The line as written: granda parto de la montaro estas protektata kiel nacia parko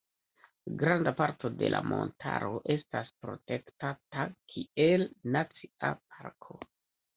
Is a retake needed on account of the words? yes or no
no